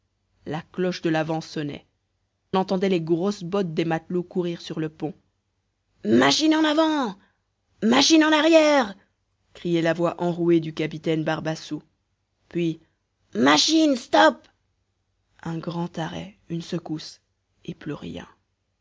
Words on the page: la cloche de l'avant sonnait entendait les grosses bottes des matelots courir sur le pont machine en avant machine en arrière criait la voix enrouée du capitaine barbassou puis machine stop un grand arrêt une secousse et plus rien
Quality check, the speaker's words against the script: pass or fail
pass